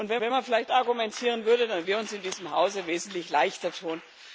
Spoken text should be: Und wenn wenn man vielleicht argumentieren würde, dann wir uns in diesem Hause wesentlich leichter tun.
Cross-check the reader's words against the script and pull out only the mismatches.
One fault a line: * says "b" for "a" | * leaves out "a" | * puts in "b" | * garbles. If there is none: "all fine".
all fine